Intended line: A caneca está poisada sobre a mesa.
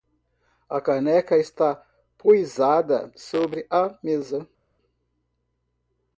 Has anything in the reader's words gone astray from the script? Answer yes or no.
no